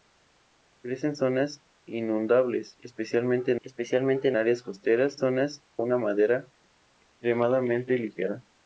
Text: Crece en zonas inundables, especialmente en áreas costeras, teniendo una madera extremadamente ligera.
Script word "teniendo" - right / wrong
wrong